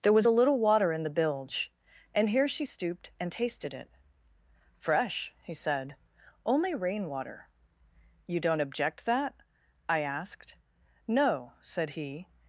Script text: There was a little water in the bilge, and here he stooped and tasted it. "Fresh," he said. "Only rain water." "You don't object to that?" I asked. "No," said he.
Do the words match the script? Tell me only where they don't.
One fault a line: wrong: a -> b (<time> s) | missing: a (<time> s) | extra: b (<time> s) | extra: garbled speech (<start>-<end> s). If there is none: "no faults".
wrong: he -> she (2.5 s)
missing: to (9.1 s)